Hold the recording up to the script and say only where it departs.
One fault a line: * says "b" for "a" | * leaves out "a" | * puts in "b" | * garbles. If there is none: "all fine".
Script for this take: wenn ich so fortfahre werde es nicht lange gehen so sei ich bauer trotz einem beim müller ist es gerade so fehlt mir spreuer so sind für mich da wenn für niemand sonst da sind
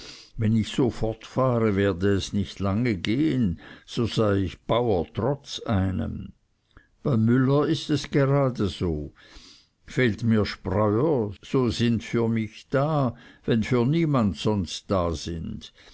all fine